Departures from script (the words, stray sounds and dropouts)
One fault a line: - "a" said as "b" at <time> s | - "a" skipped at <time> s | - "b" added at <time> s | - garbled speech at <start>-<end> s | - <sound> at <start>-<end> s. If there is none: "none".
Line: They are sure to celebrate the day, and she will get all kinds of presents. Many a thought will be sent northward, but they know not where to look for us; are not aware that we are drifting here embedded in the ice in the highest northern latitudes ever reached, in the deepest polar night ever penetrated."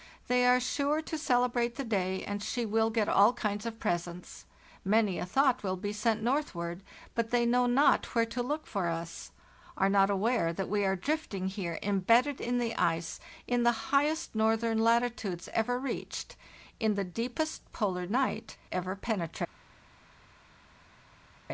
none